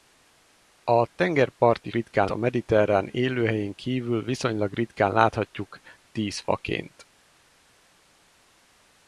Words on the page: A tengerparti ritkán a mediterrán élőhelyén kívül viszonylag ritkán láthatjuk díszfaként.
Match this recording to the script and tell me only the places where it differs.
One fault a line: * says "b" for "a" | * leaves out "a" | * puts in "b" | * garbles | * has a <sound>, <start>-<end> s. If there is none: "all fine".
all fine